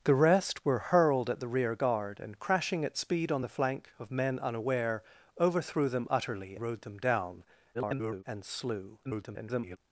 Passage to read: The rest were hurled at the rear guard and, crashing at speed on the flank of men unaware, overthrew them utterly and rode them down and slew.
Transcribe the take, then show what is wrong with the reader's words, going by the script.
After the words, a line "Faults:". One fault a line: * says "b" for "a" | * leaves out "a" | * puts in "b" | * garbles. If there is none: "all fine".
The rest were hurled at the rear guard and, crashing at speed on the flank of men unaware, overthrew them utterly rode them down [garbled] and slew. [garbled]
Faults:
* leaves out "and"
* garbles
* garbles